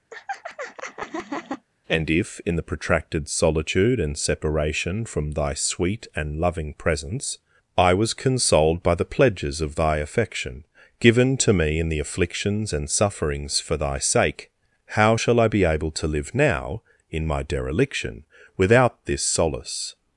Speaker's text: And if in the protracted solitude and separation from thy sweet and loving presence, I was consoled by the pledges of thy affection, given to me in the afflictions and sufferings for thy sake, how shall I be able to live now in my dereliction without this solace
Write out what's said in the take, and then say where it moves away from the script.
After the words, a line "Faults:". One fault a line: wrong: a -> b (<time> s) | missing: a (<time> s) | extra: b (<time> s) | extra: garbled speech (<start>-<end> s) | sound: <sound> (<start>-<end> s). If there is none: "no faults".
And if in the protracted solitude and separation from thy sweet and loving presence, I was consoled by the pledges of thy affection, given to me in the afflictions and sufferings for thy sake, how shall I be able to live now in my dereliction without this solace
Faults:
sound: laugh (0.1-1.7 s)